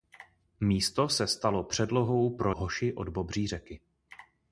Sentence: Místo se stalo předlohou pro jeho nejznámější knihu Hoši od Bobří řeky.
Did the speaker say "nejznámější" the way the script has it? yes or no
no